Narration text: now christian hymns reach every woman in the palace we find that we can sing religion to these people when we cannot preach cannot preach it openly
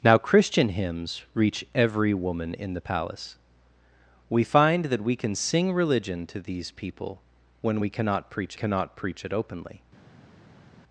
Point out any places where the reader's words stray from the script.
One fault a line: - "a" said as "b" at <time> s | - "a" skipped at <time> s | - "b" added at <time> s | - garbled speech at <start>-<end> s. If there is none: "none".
none